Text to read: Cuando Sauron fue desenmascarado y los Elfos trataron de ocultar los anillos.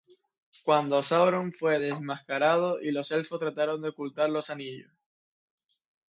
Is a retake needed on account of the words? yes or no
no